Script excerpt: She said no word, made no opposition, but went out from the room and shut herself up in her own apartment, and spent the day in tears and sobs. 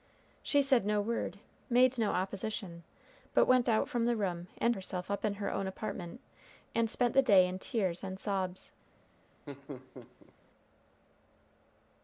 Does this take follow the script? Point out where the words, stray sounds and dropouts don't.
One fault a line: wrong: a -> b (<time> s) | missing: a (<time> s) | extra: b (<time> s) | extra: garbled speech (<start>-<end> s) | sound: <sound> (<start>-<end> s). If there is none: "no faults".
missing: shut (4.8 s)
sound: laugh (9.5-10.3 s)